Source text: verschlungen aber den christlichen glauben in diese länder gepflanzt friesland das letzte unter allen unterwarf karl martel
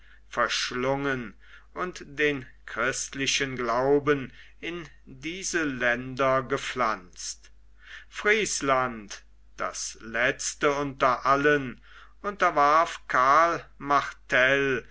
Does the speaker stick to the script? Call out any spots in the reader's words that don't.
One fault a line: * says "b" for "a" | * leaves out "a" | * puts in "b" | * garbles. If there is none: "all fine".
* says "und" for "aber"